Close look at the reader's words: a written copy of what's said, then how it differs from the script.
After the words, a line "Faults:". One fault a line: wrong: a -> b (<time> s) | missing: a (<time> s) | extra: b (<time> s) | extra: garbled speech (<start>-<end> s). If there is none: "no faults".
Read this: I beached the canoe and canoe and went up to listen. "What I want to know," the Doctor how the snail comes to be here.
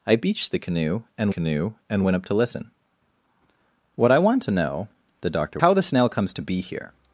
I beached the canoe and canoe and went up to listen. "What I want to know," the Doctor how the snail comes to be here.
Faults:
no faults